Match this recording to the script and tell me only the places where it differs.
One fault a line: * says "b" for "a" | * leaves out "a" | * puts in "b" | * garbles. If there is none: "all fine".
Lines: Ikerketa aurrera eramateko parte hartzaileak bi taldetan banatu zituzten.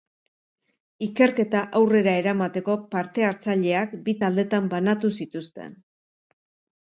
all fine